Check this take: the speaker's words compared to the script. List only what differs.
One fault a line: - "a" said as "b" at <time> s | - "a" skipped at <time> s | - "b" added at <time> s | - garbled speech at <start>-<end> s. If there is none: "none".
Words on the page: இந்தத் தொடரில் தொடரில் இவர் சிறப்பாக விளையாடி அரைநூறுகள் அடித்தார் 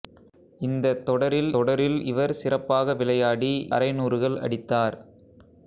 none